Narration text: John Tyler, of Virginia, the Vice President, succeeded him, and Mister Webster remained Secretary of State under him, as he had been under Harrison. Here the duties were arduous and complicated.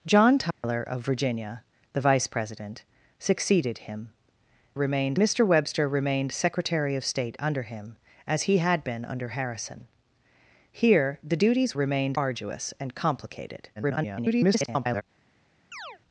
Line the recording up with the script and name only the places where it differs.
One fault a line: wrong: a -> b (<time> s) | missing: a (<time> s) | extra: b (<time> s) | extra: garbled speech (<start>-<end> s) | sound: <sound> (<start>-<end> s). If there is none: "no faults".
sound: dropout (0.5-0.6 s)
wrong: and -> remained (4.7 s)
wrong: were -> remained (11.7 s)
extra: garbled speech (13.8-15.0 s)
sound: chirp (15.7-16.0 s)